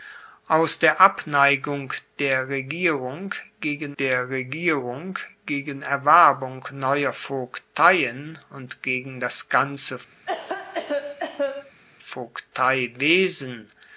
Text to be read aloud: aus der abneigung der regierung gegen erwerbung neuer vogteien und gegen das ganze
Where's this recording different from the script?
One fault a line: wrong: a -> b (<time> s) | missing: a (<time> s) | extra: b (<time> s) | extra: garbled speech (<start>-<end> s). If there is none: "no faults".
extra: der regierung gegen (4.0 s)